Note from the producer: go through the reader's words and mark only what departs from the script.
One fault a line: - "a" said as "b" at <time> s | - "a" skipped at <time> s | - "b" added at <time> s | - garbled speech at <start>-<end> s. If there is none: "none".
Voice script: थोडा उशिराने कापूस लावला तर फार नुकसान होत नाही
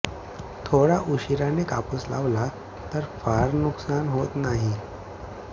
none